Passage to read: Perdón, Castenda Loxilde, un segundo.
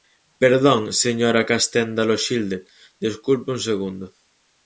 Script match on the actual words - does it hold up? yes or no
no